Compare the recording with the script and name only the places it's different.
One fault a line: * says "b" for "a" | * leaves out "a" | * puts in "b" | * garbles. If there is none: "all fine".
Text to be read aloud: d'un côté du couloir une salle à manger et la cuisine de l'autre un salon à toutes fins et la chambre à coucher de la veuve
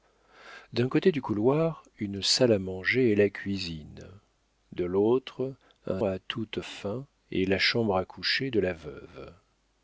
* leaves out "salon"